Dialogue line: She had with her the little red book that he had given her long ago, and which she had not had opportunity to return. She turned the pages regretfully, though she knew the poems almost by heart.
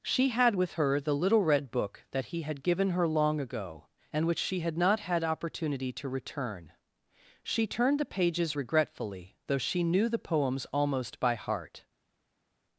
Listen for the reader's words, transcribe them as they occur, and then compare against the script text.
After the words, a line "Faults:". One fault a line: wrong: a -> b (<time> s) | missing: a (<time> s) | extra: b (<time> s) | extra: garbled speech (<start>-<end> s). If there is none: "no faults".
She had with her the little red book that he had given her long ago, and which she had not had opportunity to return. She turned the pages regretfully, though she knew the poems almost by heart.
Faults:
no faults